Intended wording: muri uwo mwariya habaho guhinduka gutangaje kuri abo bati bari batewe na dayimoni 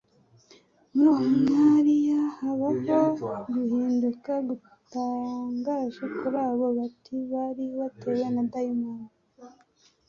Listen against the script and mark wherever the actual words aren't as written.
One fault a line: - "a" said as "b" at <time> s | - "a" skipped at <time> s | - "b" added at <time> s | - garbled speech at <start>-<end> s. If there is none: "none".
none